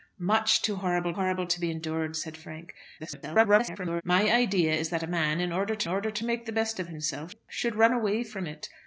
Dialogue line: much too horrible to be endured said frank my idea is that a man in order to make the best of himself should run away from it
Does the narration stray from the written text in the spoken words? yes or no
yes